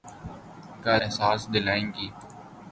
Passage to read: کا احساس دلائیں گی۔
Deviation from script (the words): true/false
false